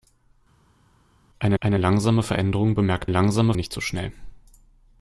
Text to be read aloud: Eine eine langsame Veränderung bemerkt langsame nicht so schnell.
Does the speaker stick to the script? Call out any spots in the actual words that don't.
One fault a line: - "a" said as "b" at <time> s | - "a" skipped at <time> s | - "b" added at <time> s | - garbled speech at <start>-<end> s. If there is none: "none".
none